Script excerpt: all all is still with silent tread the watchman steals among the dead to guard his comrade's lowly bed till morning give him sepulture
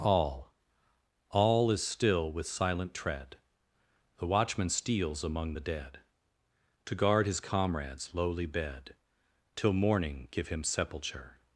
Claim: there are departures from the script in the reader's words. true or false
false